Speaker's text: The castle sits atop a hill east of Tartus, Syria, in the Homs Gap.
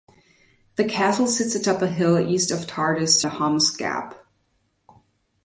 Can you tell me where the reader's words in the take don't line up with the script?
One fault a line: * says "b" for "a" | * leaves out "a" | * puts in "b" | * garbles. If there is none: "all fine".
* leaves out "Syria in"